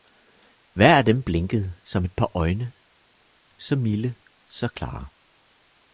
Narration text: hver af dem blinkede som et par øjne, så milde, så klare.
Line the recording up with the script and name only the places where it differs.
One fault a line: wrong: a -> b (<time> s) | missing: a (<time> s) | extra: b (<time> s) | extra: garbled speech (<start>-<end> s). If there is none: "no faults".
no faults